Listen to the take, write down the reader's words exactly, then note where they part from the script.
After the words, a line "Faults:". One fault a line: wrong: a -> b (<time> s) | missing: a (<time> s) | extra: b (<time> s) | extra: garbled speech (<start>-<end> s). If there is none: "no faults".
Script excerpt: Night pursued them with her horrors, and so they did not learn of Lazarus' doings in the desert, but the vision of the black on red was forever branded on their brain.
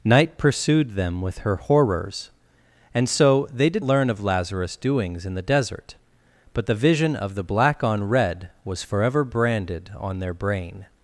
Night pursued them with her horrors, and so they did learn of Lazarus' doings in the desert, but the vision of the black on red was forever branded on their brain.
Faults:
missing: not (3.9 s)